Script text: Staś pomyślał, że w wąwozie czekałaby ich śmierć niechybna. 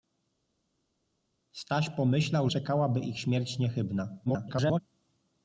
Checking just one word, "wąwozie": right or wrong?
wrong